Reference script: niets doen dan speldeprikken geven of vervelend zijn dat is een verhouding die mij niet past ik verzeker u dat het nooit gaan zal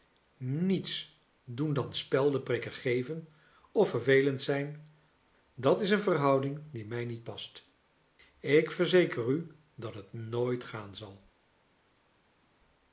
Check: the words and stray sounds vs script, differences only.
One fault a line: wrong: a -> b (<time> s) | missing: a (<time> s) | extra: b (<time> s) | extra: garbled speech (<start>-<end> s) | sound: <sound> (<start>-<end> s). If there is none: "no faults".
no faults